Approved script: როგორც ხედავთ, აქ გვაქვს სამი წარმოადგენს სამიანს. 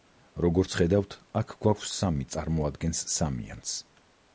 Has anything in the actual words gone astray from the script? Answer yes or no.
no